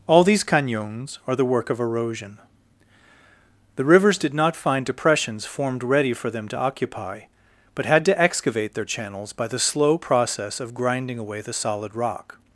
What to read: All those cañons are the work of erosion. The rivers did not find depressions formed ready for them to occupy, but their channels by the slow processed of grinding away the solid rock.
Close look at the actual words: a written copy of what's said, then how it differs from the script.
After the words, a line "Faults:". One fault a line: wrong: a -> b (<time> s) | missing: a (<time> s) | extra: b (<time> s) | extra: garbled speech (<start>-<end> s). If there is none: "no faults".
All these cañons are the work of erosion. The rivers did not find depressions formed ready for them to occupy, but had to excavate their channels by the slow process of grinding away the solid rock.
Faults:
wrong: those -> these (0.2 s)
extra: had to excavate (7.8 s)
wrong: processed -> process (10.0 s)